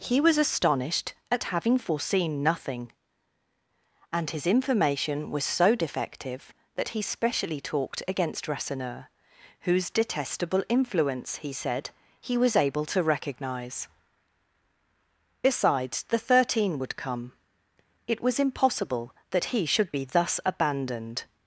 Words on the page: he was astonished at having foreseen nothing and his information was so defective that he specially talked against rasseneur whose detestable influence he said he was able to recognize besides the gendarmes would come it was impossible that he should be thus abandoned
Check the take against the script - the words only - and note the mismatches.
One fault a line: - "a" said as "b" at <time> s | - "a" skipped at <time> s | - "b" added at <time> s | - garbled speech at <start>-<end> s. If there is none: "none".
- "gendarmes" said as "thirteen" at 16.2 s